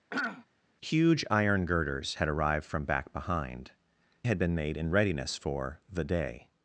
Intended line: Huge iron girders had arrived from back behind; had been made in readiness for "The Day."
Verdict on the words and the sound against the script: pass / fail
fail